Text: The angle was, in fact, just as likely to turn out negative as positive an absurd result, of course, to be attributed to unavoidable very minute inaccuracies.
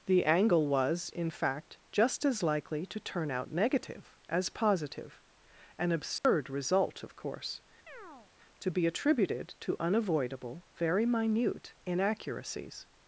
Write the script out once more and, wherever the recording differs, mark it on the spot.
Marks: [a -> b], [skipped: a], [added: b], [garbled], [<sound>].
The angle was, in fact, just as likely to turn out negative as positive an absurd [dropout] result, of course, [chirp] to be attributed to unavoidable very minute inaccuracies.